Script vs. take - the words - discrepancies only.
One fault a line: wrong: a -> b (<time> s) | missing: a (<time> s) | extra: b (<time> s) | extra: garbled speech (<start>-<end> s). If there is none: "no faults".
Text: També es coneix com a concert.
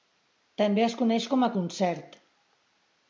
no faults